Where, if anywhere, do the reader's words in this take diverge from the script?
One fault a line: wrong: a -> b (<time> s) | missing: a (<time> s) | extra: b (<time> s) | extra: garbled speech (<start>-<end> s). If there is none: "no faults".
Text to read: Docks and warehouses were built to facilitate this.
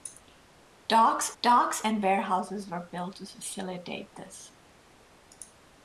extra: docks (1.4 s)